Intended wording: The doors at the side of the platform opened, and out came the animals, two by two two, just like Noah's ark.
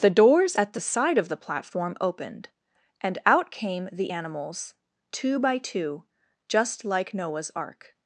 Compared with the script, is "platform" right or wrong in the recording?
right